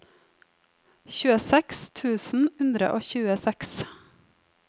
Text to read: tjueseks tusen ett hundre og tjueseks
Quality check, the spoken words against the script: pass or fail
fail